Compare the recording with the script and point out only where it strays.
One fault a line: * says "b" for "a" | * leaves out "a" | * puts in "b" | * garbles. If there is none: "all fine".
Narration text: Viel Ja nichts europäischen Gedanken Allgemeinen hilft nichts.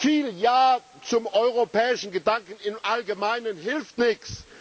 * says "zum" for "nichts"
* puts in "im"